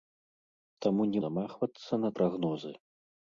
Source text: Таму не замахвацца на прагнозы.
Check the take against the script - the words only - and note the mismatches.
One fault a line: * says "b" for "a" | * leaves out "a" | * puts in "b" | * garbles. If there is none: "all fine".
all fine